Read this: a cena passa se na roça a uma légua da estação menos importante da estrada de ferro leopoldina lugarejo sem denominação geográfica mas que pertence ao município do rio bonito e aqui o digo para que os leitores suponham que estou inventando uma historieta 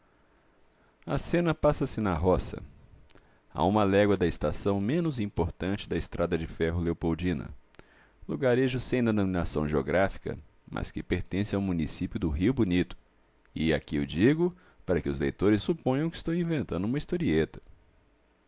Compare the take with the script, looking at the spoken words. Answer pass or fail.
pass